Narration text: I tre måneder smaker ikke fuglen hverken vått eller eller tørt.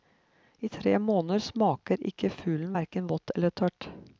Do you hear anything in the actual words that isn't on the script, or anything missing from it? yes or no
yes